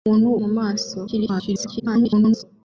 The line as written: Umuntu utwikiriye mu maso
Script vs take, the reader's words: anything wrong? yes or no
yes